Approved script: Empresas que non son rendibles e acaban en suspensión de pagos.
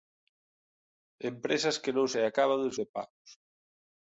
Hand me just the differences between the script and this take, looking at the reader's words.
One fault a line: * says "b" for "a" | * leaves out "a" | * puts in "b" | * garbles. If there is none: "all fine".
* leaves out "son rendibles"
* leaves out "suspensión"